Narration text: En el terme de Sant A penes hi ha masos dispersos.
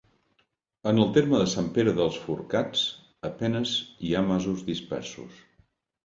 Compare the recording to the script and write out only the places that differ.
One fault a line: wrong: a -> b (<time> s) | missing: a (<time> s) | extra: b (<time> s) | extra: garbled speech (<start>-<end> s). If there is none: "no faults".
extra: Pere dels Forcats (1.8 s)